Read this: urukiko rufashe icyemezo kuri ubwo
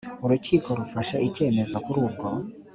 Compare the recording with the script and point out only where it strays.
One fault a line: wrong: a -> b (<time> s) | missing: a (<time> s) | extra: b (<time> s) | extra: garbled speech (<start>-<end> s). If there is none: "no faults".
no faults